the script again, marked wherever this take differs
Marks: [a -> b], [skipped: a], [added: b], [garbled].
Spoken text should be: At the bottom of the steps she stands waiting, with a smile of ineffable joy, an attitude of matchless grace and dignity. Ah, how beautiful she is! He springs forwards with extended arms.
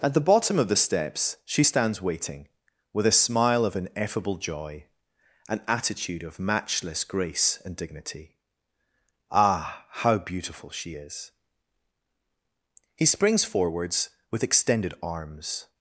At the bottom of the steps she stands waiting, with a smile of ineffable joy, an attitude of matchless grace and dignity. Ah, how beautiful she is! He springs forwards with extended arms.